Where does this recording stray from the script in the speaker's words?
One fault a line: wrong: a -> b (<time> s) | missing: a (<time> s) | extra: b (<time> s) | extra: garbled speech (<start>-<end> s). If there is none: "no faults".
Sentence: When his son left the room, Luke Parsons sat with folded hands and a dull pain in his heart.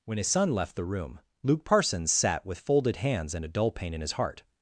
no faults